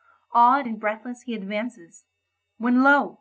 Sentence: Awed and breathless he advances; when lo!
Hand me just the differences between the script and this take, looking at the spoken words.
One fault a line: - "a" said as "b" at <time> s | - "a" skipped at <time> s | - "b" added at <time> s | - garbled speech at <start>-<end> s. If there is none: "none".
none